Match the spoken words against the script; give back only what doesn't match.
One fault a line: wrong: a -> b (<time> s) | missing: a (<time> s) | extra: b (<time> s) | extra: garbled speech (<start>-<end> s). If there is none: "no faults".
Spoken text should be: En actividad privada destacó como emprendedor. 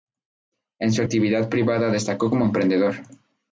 extra: su (0.9 s)